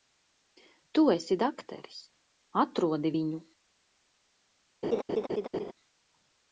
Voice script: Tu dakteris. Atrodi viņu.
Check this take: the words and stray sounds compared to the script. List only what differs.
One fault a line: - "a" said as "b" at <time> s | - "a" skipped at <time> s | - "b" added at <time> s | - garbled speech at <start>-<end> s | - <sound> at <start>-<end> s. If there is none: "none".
- "esi" added at 1.2 s
- laugh at 4.8-5.7 s